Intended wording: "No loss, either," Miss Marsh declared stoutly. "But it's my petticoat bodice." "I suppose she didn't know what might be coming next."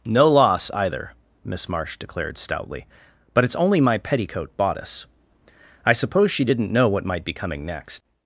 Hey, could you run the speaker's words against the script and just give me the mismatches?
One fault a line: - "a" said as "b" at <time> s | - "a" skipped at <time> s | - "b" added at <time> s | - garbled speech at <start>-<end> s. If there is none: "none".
- "only" added at 3.5 s